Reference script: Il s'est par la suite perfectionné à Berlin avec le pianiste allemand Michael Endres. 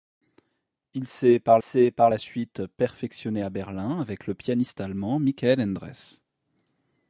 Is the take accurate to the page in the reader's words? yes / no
no